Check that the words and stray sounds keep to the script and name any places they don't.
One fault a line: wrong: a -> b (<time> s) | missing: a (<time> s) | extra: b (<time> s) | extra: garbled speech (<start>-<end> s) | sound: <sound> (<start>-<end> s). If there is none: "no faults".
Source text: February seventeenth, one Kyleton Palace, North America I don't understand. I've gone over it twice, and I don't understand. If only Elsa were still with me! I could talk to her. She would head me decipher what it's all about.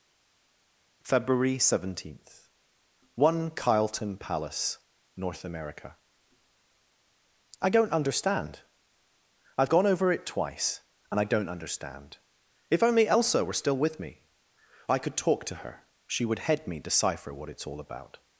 no faults